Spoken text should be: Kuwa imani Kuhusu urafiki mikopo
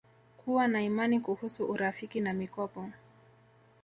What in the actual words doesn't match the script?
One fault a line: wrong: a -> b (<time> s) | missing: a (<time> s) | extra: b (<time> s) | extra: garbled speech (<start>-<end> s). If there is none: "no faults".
extra: na (0.7 s)
extra: na (2.2 s)